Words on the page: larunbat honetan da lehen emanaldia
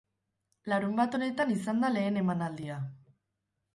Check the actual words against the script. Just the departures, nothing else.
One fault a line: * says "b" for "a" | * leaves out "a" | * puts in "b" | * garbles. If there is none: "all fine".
* puts in "izan"